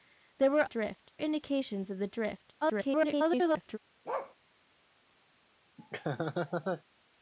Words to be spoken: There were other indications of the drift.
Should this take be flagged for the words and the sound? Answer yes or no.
yes